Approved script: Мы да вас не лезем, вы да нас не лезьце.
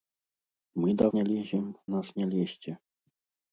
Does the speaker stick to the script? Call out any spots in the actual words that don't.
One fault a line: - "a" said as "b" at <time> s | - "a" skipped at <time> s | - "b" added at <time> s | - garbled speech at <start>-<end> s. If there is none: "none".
- "вас" skipped at 1.1 s
- "вы да" skipped at 1.8 s